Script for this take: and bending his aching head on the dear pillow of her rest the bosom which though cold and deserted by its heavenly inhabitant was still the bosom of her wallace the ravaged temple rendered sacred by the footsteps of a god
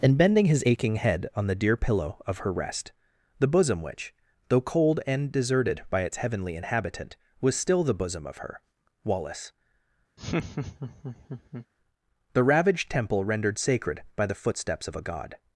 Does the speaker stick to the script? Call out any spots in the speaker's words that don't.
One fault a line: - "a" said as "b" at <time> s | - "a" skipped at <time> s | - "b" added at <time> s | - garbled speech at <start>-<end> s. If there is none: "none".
none